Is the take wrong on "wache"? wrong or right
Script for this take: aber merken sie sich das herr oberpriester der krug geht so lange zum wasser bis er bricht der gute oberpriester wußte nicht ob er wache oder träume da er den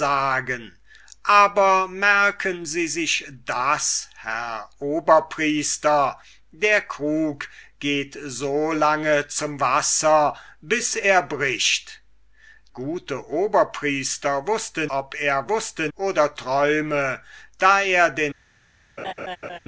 wrong